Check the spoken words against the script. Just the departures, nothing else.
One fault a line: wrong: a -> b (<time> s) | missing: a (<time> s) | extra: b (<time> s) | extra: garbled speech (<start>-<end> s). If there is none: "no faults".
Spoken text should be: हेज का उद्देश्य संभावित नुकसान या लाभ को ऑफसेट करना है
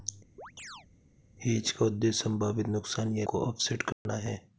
missing: लाभ (3.3 s)